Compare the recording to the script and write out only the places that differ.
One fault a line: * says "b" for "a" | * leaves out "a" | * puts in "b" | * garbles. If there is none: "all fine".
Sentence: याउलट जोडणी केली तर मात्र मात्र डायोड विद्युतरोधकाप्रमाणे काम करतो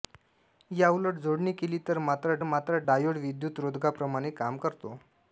all fine